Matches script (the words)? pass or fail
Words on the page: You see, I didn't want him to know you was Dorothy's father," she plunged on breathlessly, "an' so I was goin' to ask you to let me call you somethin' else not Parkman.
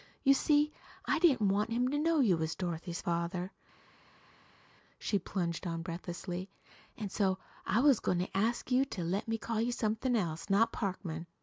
pass